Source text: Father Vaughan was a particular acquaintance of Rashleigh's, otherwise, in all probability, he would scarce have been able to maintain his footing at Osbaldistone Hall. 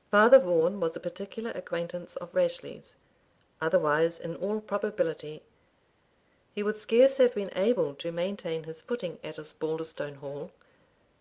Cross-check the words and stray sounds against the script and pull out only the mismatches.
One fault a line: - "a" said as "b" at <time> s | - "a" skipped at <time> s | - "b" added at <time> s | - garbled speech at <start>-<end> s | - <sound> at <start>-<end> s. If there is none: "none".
none